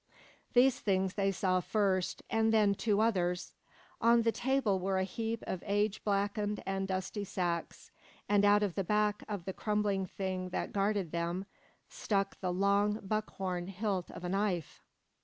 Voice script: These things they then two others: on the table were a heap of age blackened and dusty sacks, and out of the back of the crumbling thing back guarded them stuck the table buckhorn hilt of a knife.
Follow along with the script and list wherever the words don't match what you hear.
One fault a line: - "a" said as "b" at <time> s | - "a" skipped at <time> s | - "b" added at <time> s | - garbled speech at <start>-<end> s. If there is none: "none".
- "saw first and" added at 1.3 s
- "back" said as "that" at 10.5 s
- "table" said as "long" at 12.5 s